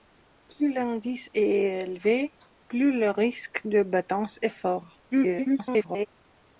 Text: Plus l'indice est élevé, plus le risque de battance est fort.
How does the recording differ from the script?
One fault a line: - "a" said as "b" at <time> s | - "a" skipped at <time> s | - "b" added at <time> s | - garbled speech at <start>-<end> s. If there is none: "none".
- garbled speech at 5.1-6.1 s